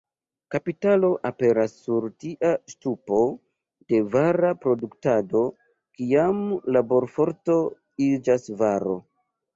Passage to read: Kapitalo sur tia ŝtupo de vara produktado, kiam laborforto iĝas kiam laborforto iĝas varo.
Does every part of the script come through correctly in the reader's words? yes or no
no